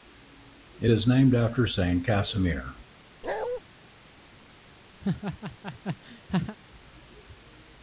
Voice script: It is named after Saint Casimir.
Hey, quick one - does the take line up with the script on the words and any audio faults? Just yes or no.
no